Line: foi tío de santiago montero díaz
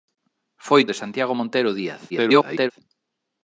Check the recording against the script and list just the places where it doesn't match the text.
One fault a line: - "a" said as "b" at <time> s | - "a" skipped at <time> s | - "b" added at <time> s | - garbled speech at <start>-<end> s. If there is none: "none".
- "tío" skipped at 0.8 s
- garbled speech at 2.1-2.7 s